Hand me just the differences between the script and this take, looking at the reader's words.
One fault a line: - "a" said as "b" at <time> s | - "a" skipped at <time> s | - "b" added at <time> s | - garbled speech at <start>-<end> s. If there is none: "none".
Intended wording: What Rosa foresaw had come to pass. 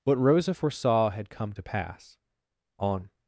- "On" added at 2.8 s